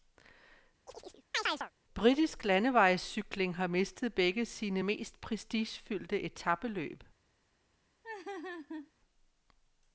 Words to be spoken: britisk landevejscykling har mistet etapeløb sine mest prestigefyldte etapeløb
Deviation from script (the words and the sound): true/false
true